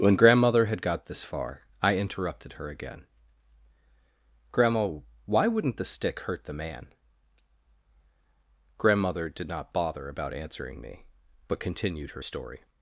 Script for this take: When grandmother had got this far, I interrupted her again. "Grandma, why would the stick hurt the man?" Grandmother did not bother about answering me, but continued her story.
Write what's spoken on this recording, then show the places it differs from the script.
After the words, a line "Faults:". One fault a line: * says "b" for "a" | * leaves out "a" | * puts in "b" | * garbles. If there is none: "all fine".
When grandmother had got this far, I interrupted her again. "Grandma, why wouldn't the stick hurt the man?" Grandmother did not bother about answering me, but continued her story.
Faults:
* says "wouldn't" for "would"